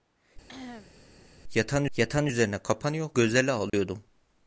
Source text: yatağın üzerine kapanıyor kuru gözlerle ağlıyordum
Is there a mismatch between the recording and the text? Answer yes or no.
yes